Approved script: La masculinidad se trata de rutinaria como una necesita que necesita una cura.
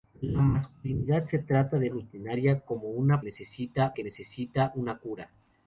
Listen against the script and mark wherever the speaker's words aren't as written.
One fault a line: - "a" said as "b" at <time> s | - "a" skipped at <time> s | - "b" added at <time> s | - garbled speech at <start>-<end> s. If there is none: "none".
none